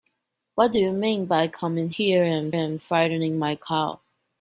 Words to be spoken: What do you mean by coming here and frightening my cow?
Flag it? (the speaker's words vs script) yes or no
yes